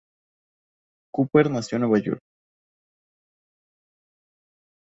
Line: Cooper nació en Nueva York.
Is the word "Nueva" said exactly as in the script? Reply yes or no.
yes